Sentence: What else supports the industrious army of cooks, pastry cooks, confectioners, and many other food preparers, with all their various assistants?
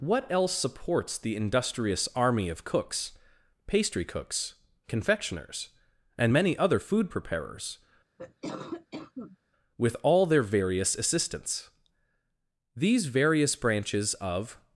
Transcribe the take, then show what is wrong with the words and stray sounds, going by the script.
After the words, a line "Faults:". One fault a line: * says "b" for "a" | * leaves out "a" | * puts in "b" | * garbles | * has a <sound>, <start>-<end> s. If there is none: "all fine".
What else supports the industrious army of cooks, pastry cooks, confectioners, and many other food preparers, with all their various assistants? These various branches of
Faults:
* has a cough, 8.2-9.4 s
* puts in "These various branches of"